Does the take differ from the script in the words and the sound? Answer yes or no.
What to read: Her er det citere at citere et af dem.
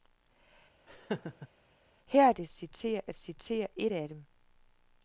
yes